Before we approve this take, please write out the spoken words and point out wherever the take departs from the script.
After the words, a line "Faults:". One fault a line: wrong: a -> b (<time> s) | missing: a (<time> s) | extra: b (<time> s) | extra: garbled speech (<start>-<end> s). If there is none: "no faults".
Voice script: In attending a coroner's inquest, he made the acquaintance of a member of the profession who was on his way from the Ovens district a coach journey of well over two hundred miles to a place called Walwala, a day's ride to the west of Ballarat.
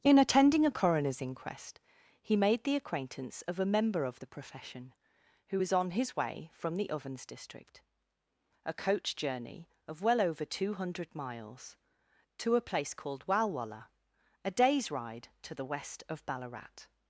In attending a coroner's inquest, he made the acquaintance of a member of the profession who was on his way from the Ovens district a coach journey of well over two hundred miles to a place called Walwala, a day's ride to the west of Ballarat.
Faults:
no faults